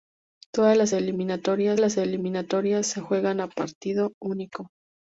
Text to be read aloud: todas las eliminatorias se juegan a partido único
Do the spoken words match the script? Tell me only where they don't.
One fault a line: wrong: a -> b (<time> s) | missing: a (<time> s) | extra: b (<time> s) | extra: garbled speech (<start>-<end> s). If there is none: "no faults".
extra: las eliminatorias (1.8 s)